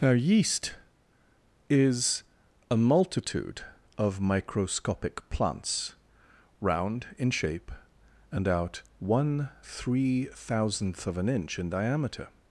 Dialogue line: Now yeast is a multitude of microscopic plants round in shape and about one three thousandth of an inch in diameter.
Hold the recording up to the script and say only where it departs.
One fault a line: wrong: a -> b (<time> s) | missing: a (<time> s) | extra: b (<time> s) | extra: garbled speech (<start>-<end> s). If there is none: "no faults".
wrong: about -> out (8.5 s)